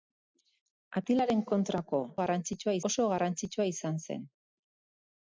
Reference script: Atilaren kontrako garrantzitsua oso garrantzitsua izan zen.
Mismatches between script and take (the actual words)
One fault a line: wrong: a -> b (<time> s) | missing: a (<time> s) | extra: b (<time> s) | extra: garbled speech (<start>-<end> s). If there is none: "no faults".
no faults